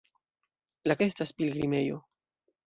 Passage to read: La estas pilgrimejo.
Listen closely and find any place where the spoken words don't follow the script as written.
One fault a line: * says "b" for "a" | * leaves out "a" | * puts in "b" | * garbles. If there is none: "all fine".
all fine